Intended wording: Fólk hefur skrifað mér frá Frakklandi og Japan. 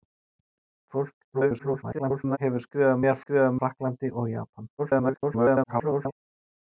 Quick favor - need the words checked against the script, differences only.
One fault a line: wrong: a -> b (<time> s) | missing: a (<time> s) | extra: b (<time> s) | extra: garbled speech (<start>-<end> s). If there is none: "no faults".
extra: garbled speech (1.3-2.4 s)
wrong: frá -> skrifað (3.2 s)
extra: garbled speech (4.8-6.1 s)